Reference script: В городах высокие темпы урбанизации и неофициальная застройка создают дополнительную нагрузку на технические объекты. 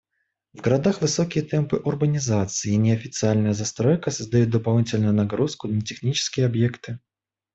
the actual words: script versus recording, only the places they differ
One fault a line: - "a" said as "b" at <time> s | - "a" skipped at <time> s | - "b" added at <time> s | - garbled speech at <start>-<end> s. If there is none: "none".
none